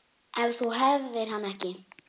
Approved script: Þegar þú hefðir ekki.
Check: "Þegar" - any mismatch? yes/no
yes